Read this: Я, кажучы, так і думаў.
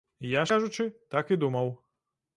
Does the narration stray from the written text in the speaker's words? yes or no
no